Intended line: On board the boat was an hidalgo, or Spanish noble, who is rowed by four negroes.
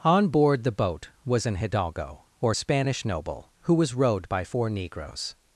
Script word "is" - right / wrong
wrong